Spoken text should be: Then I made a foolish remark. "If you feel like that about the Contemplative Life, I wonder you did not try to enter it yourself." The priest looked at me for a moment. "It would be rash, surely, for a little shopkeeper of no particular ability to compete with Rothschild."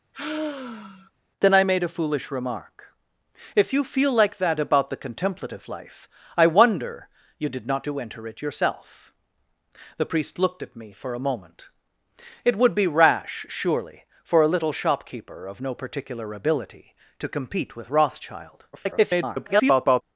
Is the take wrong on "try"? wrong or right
wrong